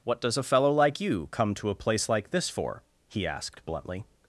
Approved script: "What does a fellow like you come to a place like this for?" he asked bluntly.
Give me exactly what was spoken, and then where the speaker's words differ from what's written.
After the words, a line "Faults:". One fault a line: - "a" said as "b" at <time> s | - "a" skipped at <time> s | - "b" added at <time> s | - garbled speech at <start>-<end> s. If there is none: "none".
"What does a fellow like you come to a place like this for?" he asked bluntly.
Faults:
none